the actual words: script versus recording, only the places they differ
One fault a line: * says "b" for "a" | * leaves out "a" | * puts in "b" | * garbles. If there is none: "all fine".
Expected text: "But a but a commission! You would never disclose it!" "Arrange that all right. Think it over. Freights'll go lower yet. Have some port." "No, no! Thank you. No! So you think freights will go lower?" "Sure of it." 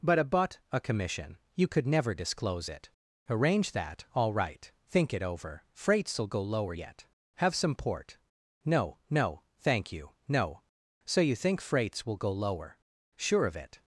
* says "could" for "would"